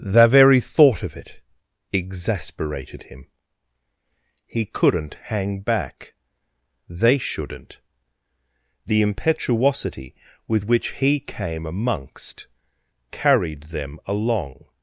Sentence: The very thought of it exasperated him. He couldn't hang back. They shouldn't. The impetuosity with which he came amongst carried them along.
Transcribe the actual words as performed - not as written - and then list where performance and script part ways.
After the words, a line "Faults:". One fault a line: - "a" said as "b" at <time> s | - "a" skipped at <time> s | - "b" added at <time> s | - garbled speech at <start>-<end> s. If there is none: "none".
The very thought of it exasperated him. He couldn't hang back. They shouldn't. The impetuosity with which he came amongst carried them along.
Faults:
none